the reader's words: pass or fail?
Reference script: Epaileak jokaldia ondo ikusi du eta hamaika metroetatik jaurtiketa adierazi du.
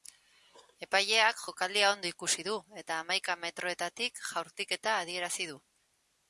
pass